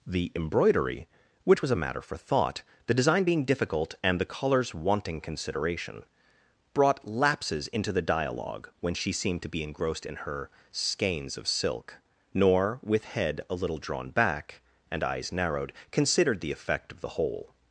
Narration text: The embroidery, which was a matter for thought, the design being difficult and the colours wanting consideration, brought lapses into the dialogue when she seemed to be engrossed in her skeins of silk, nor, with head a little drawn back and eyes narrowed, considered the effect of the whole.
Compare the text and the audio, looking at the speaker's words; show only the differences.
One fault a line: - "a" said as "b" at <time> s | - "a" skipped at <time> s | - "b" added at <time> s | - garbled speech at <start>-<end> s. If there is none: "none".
none